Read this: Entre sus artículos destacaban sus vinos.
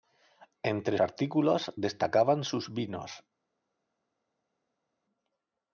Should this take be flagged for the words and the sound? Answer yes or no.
yes